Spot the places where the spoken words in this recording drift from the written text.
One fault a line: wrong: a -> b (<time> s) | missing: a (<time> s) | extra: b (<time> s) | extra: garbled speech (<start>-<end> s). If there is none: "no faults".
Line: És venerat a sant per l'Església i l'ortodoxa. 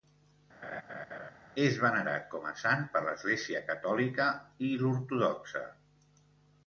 extra: com (2.3 s)
extra: catòlica (3.7 s)